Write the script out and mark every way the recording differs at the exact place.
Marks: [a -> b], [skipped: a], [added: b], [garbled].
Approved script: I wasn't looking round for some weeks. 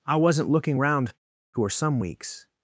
I wasn't looking round for some weeks.